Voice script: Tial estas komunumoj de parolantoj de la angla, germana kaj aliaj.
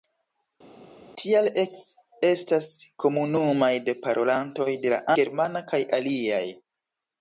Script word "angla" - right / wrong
wrong